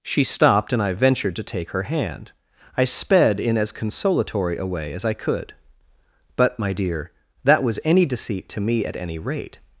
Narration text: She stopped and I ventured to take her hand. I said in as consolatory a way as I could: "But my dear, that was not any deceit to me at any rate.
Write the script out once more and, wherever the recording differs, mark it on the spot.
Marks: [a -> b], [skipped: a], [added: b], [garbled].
She stopped and I ventured to take her hand. I [said -> sped] in as consolatory a way as I could: "But my dear, that was [skipped: not] any deceit to me at any rate.